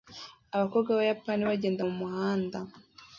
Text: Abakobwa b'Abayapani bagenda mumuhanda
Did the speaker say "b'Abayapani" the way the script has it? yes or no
yes